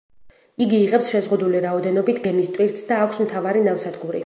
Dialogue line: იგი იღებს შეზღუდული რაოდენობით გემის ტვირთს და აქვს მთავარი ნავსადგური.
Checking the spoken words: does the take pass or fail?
pass